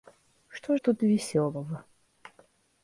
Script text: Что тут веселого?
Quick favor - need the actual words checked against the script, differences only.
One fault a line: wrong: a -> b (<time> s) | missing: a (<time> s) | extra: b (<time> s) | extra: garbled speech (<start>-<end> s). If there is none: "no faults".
no faults